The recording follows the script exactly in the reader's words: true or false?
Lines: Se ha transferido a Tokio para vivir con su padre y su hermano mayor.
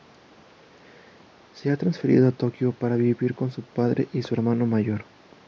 true